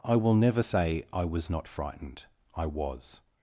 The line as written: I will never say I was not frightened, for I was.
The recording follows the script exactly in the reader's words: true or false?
false